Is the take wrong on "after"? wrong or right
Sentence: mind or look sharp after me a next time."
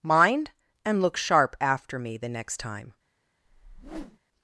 right